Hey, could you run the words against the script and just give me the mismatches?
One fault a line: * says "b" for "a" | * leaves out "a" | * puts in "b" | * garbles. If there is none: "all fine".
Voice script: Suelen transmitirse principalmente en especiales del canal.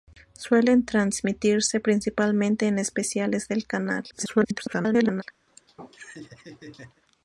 * garbles